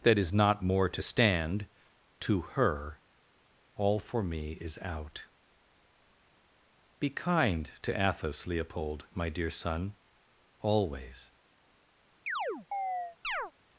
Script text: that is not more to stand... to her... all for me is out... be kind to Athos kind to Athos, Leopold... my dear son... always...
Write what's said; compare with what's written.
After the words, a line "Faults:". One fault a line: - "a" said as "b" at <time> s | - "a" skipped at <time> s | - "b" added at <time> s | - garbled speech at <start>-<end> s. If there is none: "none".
that is not more to stand... to her... all for me is out... be kind to Athos, Leopold... my dear son... always...
Faults:
- "kind to Athos" skipped at 8.5 s